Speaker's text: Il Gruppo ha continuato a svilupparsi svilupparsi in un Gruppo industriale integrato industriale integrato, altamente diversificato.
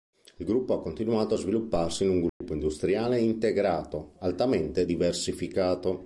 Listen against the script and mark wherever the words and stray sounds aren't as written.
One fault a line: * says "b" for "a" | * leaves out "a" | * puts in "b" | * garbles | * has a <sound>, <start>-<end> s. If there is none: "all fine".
* leaves out "svilupparsi"
* has a dropout, 2.3-2.4 s
* leaves out "industriale integrato"